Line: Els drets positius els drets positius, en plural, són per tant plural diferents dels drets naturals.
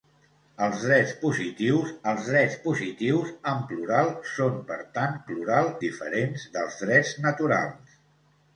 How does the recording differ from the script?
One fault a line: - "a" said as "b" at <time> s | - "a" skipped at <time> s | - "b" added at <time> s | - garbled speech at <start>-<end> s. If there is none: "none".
none